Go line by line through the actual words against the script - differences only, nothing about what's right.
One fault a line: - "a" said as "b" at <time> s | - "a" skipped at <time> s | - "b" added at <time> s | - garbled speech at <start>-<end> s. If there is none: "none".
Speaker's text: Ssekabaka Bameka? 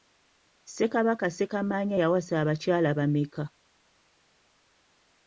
- "Ssekamaanya yawasa abakyala" added at 1.3 s